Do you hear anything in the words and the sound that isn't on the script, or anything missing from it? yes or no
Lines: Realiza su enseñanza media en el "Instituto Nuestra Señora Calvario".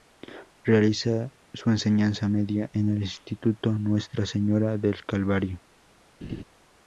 yes